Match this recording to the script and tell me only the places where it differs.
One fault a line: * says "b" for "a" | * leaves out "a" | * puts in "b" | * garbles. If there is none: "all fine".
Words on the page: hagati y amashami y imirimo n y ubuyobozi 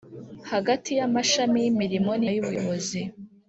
all fine